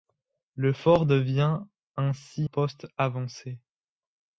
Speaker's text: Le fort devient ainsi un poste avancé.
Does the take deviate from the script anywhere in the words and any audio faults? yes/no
yes